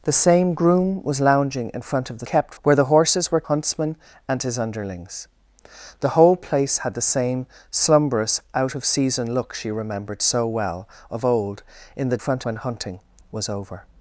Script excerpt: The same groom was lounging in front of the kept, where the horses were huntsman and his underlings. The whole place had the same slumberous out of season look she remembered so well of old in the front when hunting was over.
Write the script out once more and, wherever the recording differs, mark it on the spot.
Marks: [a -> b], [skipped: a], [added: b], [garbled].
The same groom was lounging in front of the kept, where the horses were huntsman and his underlings. The whole place had the same slumberous out of season look she remembered so well of old in the front when hunting was over.